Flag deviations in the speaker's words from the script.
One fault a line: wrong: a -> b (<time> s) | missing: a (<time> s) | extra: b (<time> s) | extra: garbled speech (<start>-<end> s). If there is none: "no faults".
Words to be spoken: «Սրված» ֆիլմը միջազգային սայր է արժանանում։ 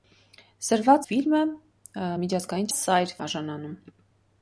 no faults